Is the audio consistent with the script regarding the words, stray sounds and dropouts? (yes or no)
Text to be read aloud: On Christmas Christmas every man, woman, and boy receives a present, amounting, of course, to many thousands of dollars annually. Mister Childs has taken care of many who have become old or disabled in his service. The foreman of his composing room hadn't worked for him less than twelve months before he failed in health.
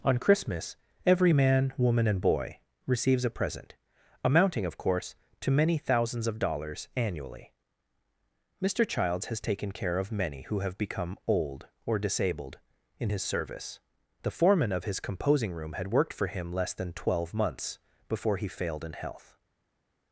no